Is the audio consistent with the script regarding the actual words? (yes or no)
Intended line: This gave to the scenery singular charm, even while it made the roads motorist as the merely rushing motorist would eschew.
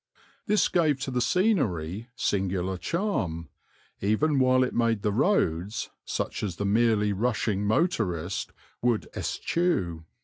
no